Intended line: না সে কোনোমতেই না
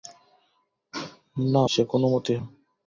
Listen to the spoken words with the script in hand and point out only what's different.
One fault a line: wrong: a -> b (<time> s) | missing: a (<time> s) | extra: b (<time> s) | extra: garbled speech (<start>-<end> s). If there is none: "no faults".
no faults